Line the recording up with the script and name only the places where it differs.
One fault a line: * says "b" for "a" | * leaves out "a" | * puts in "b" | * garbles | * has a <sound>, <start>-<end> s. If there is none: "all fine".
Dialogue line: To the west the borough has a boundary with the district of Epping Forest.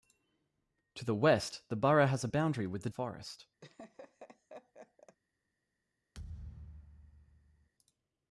* leaves out "district of Epping"
* has a laugh, 3.6-5.2 s
* has a thud, 6.1-7.7 s